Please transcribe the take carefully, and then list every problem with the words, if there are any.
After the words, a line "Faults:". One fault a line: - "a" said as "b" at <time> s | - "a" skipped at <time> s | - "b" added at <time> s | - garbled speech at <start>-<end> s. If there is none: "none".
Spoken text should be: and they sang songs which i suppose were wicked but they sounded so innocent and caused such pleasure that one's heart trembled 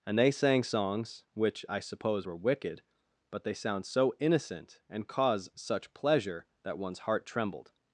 and they sang songs which i suppose were wicked but they sound so innocent and cause such pleasure that one's heart trembled
Faults:
- "sounded" said as "sound" at 3.5 s
- "caused" said as "cause" at 5.1 s